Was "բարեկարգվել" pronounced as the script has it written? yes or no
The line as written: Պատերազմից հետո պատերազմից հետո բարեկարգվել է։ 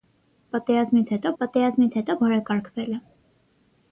yes